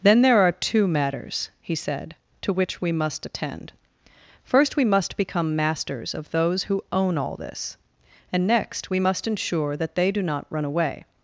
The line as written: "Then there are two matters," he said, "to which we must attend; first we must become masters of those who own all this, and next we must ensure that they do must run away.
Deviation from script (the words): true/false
true